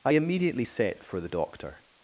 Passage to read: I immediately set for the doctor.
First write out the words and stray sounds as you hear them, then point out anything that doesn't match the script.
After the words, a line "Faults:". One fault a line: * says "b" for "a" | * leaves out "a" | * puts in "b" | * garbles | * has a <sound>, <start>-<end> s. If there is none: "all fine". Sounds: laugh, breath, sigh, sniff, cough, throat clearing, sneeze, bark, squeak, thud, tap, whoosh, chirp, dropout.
I immediately set for the doctor.
Faults:
all fine